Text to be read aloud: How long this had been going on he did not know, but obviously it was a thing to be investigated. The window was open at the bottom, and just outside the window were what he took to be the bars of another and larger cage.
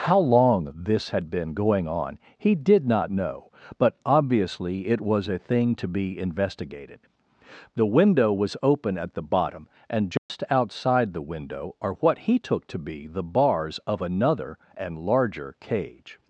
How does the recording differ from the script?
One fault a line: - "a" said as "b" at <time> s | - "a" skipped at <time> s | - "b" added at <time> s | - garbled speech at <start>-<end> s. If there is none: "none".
- "were" said as "are" at 11.8 s